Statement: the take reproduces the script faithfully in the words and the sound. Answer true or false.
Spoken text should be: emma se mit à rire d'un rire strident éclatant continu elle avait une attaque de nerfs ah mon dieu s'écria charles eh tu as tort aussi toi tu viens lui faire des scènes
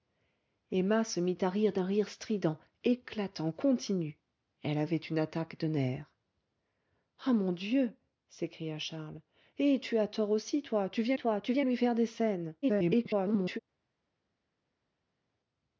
false